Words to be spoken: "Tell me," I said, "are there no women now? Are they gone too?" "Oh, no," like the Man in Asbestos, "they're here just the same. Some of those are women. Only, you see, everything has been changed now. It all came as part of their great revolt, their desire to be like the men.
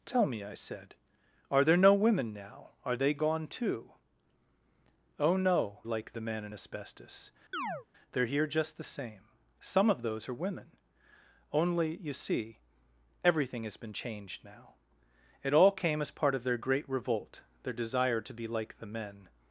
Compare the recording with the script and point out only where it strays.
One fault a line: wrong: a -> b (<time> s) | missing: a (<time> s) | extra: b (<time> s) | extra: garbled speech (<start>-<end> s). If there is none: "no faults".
no faults